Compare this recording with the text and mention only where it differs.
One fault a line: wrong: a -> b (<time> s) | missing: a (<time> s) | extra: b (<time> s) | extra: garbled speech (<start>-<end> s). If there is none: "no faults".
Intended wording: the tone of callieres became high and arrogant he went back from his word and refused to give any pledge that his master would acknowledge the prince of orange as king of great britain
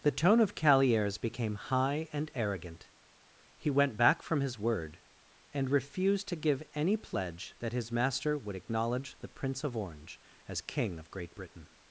no faults